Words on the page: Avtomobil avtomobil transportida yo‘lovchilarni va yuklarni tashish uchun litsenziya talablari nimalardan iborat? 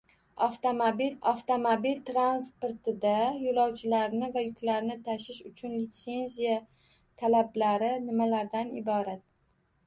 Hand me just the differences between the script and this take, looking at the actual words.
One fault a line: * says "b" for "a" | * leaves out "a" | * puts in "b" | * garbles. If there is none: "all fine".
all fine